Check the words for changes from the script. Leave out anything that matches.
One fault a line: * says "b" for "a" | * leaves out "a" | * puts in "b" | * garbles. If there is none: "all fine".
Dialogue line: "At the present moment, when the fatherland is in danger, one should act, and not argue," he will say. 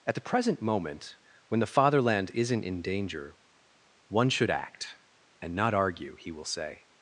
* says "isn't" for "is"